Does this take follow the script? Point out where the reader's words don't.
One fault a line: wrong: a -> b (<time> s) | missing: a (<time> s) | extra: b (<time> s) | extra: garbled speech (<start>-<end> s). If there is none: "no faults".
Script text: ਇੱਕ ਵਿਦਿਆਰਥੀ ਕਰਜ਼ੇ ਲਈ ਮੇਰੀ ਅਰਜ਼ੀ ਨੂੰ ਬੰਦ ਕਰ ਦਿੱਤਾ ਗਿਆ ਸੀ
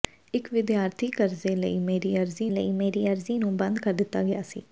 extra: ਲਈ ਮੇਰੀ ਅਰਜ਼ੀ (2.5 s)